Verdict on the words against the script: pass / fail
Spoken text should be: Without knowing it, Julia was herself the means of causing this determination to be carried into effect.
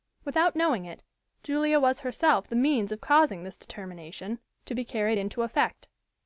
pass